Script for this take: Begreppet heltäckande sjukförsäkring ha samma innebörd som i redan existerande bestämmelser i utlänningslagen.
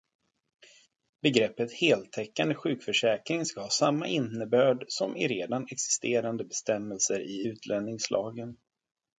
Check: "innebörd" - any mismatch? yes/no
no